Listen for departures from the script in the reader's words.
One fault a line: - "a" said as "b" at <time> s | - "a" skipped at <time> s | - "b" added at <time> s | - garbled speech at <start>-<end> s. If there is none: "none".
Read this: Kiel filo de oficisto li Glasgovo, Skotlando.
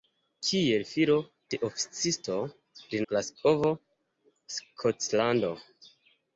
none